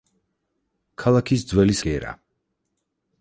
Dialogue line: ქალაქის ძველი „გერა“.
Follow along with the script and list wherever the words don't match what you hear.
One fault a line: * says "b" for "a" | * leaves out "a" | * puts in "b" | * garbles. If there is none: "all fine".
all fine